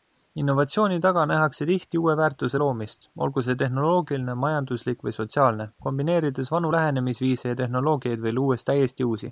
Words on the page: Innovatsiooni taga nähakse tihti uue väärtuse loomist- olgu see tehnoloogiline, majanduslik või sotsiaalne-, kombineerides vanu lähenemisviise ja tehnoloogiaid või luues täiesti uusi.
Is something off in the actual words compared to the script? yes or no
no